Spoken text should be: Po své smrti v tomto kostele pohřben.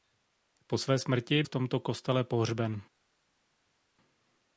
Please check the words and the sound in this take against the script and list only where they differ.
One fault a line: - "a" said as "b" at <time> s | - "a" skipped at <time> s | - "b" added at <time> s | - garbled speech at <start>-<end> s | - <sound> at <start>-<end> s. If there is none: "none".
none